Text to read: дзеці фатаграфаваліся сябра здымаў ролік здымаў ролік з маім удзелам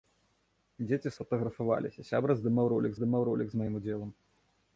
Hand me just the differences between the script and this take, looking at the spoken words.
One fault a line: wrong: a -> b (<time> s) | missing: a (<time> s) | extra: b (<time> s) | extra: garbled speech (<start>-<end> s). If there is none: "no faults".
no faults